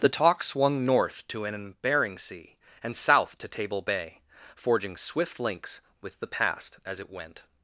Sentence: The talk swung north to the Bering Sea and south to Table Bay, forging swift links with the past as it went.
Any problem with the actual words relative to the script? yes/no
yes